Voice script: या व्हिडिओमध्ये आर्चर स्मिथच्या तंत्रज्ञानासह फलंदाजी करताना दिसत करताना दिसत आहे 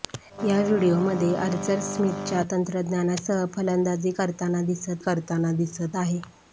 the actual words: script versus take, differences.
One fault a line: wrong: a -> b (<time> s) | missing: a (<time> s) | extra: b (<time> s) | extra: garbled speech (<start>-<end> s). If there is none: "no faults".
no faults